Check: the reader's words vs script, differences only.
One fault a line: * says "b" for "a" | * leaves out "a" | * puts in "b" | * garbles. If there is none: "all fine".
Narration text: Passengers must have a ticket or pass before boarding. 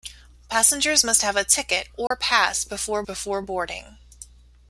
* puts in "before"